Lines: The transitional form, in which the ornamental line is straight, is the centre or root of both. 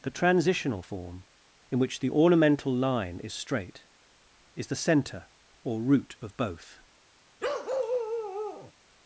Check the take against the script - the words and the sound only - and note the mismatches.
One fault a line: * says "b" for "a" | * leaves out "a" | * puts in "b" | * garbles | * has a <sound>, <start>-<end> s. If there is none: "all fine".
* has a bark, 7.4-8.7 s